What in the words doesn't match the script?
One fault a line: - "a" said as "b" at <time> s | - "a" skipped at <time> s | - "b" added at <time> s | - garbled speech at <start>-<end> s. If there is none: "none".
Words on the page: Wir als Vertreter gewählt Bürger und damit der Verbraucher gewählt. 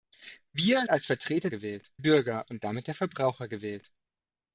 none